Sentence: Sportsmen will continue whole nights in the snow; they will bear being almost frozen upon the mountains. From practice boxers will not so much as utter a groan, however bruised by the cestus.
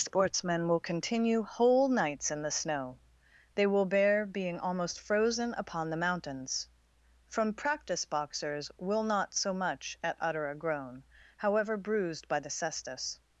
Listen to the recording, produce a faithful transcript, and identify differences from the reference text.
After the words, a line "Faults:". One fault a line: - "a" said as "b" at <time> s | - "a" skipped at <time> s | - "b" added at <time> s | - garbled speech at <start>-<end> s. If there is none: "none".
Sportsmen will continue whole nights in the snow; they will bear being almost frozen upon the mountains. From practice boxers will not so much at utter a groan, however bruised by the cestus.
Faults:
- "as" said as "at" at 10.0 s